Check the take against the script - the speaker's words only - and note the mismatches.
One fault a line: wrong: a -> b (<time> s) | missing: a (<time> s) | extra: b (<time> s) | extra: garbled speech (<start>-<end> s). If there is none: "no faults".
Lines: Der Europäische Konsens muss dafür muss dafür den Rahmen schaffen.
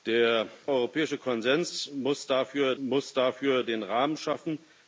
no faults